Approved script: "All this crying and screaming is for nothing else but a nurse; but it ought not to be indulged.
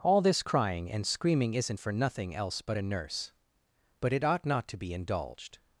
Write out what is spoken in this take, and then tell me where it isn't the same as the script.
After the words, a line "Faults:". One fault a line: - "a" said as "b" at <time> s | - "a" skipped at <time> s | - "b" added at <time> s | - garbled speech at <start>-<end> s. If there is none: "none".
"All this crying and screaming isn't for nothing else but a nurse; but it ought not to be indulged.
Faults:
- "is" said as "isn't" at 1.5 s